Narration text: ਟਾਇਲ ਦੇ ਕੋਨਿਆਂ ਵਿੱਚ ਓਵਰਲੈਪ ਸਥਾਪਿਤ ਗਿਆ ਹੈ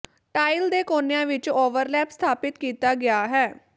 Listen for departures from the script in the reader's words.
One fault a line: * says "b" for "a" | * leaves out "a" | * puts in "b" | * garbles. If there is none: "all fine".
* puts in "ਕੀਤਾ"